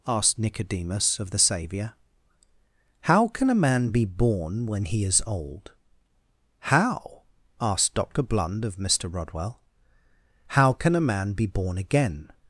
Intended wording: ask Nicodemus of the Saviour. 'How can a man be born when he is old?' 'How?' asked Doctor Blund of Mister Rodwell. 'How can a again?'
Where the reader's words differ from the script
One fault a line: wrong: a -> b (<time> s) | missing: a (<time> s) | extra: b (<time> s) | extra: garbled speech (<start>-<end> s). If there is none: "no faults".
wrong: ask -> asked (0.1 s)
extra: man be born (11.1 s)